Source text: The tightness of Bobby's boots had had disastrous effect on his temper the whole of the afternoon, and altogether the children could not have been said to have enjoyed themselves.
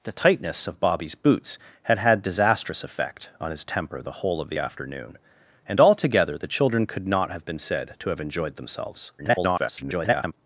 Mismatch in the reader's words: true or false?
true